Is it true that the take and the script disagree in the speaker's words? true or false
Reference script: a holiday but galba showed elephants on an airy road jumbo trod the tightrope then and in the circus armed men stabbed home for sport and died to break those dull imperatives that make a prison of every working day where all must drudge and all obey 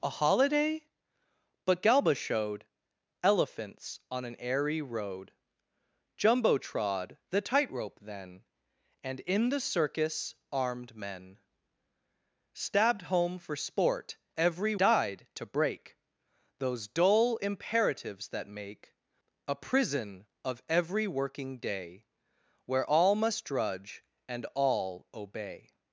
true